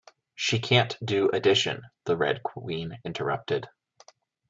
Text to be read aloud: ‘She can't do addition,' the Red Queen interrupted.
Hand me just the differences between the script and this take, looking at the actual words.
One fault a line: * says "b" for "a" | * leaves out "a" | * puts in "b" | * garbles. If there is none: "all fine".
all fine